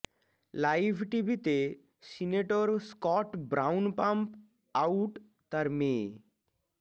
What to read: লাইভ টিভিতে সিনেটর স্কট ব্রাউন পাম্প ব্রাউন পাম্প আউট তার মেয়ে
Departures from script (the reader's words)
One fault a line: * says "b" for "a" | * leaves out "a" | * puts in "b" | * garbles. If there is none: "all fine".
* leaves out "ব্রাউন পাম্প"